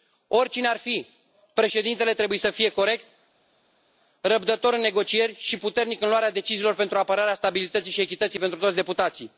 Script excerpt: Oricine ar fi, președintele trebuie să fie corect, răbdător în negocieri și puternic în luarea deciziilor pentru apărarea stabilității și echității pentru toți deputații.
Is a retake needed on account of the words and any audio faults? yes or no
no